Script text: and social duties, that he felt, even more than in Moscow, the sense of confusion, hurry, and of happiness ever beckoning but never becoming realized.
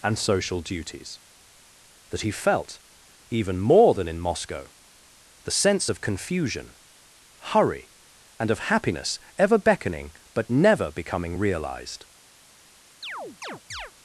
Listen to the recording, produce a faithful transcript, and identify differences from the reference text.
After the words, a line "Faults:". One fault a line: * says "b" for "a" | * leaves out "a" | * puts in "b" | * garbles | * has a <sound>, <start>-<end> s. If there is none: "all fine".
and social duties, that he felt, even more than in Moscow, the sense of confusion, hurry, and of happiness ever beckoning but never becoming realized.
Faults:
* has a chirp, 13.0-13.9 s